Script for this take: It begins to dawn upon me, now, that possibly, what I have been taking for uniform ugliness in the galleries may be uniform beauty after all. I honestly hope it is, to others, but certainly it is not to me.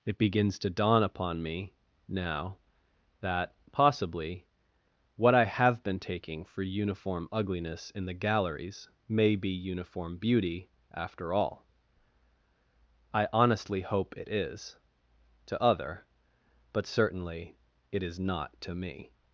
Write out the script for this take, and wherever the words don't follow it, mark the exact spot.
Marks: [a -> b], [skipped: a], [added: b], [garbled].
It begins to dawn upon me, now, that possibly, what I have been taking for uniform ugliness in the galleries may be uniform beauty after all. I honestly hope it is, to [others, -> other] but certainly it is not to me.